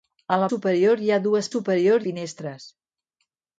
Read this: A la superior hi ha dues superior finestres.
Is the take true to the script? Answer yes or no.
yes